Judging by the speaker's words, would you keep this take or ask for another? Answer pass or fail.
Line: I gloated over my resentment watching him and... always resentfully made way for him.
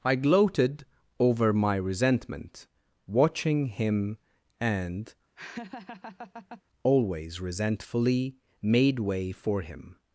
pass